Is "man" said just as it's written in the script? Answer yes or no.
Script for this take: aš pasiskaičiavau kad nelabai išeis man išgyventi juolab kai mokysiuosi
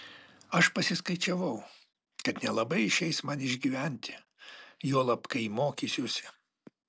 yes